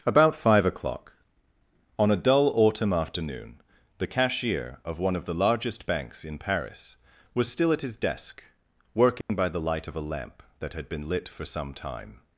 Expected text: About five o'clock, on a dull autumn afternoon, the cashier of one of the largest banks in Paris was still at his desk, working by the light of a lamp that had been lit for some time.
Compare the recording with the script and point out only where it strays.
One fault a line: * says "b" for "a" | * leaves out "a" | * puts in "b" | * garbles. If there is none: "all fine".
all fine